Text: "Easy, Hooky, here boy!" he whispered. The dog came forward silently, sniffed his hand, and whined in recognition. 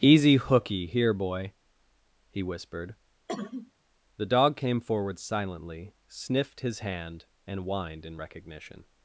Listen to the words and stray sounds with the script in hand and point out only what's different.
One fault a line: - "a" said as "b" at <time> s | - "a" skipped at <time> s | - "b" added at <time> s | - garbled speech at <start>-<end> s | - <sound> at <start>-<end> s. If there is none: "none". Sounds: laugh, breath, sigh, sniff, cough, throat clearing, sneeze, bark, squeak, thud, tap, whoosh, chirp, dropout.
- cough at 3.3-3.7 s